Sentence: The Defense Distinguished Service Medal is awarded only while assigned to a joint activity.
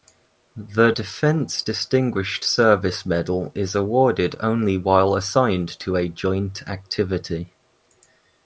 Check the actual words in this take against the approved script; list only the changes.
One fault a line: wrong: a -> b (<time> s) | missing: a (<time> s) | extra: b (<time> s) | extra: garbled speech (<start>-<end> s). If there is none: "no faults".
no faults